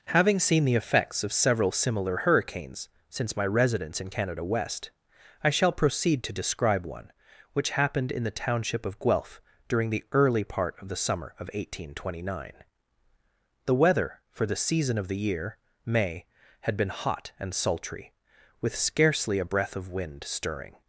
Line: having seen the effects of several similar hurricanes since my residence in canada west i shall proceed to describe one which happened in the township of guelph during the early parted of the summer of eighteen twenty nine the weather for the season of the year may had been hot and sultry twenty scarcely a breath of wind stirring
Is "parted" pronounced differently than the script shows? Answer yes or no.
yes